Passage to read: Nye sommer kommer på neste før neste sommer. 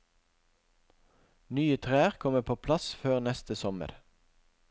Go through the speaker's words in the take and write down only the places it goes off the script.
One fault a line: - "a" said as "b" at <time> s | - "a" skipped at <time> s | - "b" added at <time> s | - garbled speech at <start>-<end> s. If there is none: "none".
- "sommer" said as "trær" at 1.9 s
- "neste" said as "plass" at 2.7 s